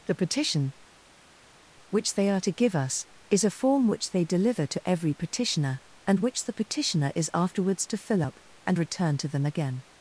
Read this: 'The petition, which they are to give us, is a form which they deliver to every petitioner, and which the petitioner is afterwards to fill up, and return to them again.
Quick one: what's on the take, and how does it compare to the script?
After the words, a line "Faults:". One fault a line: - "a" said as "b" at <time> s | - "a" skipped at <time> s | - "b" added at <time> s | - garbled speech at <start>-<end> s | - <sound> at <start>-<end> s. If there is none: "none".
'The petition, which they are to give us, is a form which they deliver to every petitioner, and which the petitioner is afterwards to fill up, and return to them again.
Faults:
none